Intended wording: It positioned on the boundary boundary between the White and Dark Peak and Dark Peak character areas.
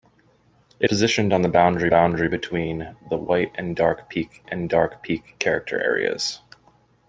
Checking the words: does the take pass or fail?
pass